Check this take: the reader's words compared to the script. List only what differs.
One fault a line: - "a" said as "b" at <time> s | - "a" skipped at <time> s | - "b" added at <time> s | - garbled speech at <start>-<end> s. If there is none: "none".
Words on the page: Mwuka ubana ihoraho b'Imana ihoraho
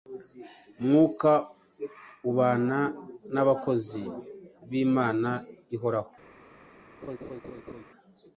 - "ihoraho" said as "n'abakozi" at 3.3 s